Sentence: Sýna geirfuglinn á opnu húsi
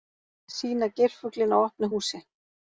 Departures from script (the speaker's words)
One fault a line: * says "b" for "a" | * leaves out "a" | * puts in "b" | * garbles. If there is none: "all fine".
all fine